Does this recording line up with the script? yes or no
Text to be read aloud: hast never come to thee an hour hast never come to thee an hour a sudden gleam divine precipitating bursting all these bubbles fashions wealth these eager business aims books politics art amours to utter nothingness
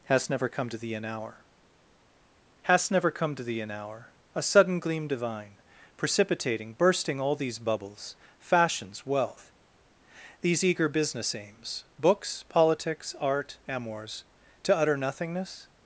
yes